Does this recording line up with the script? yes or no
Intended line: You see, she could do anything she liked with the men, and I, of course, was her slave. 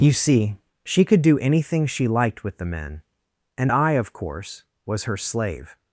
yes